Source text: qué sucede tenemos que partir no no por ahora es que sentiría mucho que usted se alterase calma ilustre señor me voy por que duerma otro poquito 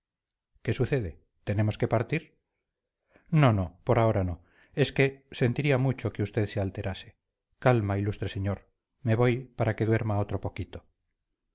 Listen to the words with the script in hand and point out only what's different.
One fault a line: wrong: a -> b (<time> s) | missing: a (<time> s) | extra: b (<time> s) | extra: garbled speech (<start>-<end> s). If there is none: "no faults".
extra: no (4.2 s)
wrong: por -> para (9.6 s)